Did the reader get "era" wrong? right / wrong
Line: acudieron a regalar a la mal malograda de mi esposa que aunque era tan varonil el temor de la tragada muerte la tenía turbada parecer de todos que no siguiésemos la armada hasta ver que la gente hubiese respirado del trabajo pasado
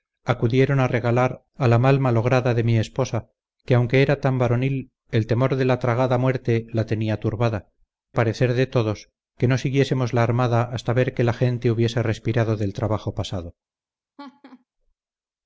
right